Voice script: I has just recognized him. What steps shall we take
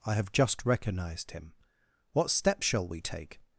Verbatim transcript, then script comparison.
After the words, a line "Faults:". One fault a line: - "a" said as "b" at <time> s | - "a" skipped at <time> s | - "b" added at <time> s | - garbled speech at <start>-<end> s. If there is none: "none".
I have just recognized him. What steps shall we take
Faults:
- "has" said as "have" at 0.1 s